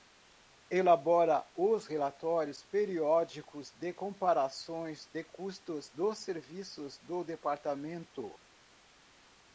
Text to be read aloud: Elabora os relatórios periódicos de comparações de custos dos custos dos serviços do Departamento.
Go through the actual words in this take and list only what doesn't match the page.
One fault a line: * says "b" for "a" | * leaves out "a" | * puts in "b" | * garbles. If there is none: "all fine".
* leaves out "custos dos"